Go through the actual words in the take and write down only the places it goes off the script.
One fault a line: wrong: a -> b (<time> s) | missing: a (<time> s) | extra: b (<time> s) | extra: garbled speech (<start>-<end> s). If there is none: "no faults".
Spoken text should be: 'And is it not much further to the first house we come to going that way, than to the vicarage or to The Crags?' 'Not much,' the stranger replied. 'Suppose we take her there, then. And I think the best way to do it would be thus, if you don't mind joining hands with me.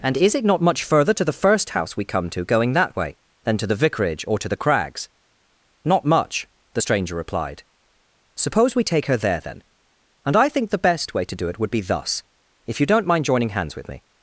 no faults